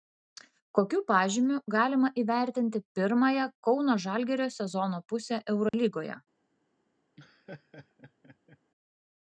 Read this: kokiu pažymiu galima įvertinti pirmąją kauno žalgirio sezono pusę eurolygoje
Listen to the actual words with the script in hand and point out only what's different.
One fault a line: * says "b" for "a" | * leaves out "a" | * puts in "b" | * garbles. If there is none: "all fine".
all fine